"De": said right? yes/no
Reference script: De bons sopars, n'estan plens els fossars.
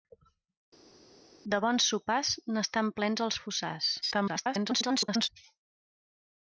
yes